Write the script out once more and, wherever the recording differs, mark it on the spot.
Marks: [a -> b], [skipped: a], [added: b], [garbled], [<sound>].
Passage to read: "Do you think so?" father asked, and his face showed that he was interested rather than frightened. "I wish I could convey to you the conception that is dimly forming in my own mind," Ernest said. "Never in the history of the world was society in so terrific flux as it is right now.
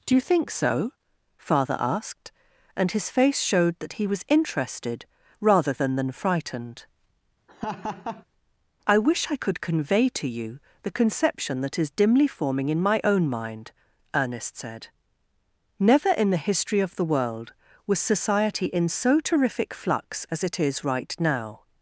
"Do you think so?" father asked, and his face showed that he was interested rather than [added: than] frightened. [laugh] "I wish I could convey to you the conception that is dimly forming in my own mind," Ernest said. "Never in the history of the world was society in so terrific flux as it is right now.